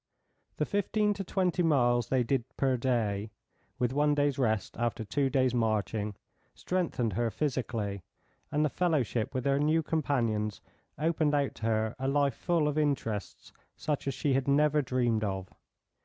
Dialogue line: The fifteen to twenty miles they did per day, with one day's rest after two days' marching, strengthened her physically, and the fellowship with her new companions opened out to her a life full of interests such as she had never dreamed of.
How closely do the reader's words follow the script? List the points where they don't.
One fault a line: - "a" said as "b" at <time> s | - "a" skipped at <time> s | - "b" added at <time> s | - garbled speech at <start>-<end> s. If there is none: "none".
none